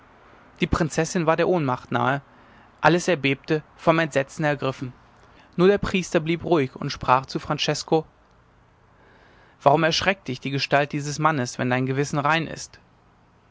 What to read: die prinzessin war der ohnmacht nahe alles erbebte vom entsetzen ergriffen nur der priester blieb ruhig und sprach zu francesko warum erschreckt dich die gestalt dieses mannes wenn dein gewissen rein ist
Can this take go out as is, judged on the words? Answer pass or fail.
pass